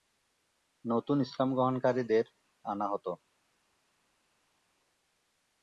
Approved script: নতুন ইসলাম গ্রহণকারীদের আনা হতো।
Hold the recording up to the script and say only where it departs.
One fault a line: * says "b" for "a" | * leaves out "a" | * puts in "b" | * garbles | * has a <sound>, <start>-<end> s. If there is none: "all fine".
all fine